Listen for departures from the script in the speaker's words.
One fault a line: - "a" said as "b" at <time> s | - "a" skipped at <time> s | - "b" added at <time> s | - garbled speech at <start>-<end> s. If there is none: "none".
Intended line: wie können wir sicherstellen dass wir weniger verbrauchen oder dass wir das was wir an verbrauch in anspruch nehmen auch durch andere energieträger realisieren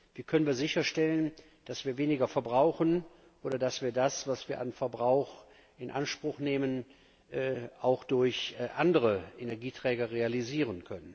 none